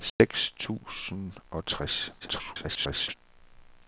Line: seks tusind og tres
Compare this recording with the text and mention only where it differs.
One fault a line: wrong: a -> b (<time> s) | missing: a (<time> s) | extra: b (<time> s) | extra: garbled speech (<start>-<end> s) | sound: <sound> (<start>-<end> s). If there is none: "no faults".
sound: dropout (0.1-0.2 s)
extra: garbled speech (2.2-3.1 s)